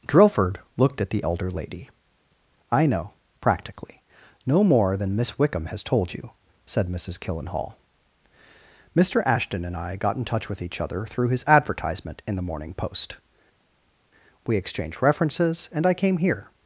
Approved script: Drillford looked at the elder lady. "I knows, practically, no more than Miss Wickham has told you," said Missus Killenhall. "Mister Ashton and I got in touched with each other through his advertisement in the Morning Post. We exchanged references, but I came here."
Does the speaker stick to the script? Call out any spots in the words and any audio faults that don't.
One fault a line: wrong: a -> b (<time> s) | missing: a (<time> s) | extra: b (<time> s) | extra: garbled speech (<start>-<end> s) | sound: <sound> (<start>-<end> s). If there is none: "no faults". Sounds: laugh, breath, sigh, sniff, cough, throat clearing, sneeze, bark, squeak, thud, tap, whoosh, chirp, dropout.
wrong: knows -> know (2.9 s)
wrong: touched -> touch (10.2 s)
wrong: but -> and (15.7 s)